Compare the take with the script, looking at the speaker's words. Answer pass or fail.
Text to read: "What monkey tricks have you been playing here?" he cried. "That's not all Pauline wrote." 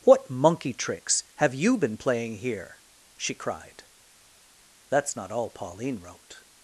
fail